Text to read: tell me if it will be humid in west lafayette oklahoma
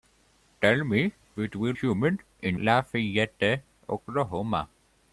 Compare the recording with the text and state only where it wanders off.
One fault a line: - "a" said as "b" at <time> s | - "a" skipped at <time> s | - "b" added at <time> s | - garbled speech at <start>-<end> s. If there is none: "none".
- "if" skipped at 1.1 s
- "be" skipped at 1.7 s
- "west" skipped at 2.6 s